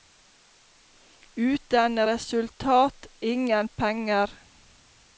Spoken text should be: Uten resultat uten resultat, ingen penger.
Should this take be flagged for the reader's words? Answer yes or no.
yes